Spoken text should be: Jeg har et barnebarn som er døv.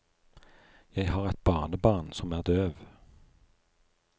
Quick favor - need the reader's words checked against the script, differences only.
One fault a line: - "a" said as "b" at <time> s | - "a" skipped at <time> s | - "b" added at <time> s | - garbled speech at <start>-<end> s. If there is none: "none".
none